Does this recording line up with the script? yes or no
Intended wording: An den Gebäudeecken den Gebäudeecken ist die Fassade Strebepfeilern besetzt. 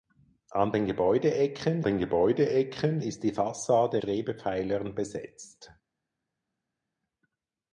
yes